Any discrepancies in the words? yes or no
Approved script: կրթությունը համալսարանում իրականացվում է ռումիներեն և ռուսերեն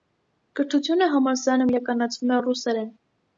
yes